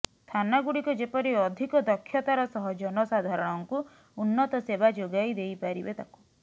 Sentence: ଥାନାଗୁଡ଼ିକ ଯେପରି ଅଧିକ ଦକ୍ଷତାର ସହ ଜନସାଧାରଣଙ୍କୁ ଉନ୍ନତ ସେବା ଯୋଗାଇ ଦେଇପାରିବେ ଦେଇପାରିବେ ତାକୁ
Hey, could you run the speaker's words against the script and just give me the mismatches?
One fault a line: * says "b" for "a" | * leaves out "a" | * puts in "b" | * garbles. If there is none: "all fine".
* leaves out "ଦେଇପାରିବେ"